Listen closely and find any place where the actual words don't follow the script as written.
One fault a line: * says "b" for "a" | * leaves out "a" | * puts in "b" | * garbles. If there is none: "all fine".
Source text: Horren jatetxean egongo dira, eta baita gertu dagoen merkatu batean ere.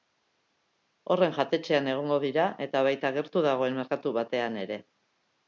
all fine